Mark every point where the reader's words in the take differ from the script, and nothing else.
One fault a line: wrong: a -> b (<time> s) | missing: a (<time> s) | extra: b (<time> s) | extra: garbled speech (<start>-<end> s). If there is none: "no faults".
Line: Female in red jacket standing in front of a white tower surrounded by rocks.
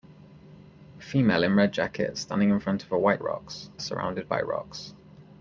wrong: tower -> rocks (3.2 s)